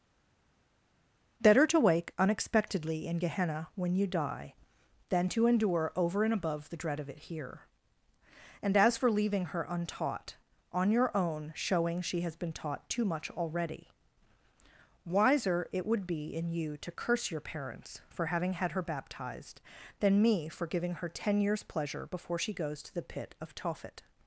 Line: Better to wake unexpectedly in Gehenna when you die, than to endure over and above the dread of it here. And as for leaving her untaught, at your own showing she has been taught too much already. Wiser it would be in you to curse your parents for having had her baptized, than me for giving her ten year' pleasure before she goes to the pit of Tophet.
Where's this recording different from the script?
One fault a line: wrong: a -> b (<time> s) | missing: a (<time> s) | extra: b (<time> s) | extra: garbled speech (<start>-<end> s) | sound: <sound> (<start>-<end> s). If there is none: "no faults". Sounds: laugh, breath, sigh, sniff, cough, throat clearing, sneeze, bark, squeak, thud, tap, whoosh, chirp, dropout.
wrong: at -> on (10.7 s)
wrong: year -> years (21.4 s)